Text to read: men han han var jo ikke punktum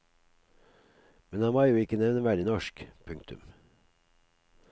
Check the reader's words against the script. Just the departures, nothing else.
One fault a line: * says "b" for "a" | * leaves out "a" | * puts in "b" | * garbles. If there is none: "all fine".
* leaves out "han"
* puts in "nevneverdig norsk"